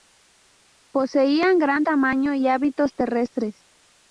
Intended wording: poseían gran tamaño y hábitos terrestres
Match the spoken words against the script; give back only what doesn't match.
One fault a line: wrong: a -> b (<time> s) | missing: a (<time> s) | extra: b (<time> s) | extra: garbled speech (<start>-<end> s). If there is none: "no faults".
no faults